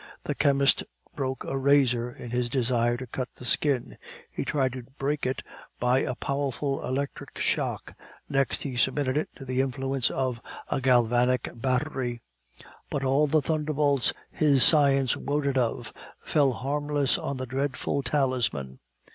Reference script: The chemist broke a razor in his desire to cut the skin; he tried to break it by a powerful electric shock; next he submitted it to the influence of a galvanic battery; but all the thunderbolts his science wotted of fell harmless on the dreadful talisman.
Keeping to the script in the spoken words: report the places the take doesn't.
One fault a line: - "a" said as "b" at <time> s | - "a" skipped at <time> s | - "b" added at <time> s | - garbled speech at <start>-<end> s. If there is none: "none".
none